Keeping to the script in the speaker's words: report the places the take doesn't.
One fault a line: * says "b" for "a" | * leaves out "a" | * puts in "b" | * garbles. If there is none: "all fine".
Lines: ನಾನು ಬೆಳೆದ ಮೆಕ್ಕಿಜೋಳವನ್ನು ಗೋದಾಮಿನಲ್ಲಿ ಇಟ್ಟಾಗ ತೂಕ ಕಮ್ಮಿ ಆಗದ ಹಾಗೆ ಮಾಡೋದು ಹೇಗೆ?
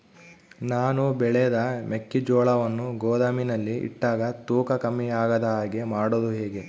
all fine